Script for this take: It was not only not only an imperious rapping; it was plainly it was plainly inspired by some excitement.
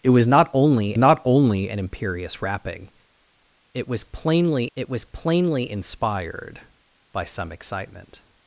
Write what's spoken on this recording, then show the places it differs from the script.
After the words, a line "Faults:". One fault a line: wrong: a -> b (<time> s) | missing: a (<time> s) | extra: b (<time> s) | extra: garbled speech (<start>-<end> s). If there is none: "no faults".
It was not only not only an imperious rapping; it was plainly it was plainly inspired by some excitement.
Faults:
no faults